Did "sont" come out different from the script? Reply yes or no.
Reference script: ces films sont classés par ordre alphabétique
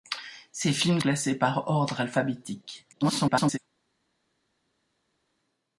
yes